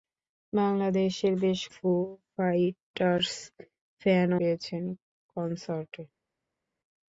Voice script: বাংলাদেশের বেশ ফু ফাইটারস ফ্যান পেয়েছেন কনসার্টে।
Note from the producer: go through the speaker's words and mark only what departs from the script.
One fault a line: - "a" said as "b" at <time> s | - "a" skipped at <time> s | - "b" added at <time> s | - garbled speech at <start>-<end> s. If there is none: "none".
none